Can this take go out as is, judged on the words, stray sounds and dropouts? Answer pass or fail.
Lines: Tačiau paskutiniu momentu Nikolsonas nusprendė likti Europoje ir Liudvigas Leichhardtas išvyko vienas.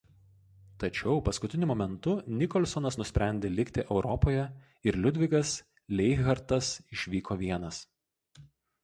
pass